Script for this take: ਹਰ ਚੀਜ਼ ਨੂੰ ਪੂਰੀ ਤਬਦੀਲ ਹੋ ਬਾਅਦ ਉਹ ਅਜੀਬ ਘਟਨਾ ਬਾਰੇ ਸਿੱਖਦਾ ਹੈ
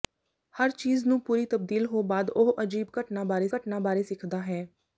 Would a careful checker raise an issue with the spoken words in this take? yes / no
yes